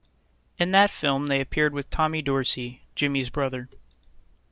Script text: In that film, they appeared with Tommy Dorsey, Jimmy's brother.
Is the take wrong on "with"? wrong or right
right